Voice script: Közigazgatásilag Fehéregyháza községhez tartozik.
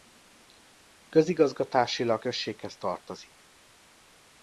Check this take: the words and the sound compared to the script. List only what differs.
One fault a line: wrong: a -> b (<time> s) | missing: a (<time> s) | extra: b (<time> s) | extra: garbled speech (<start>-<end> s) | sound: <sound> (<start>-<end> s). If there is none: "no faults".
missing: Fehéregyháza (2.2 s)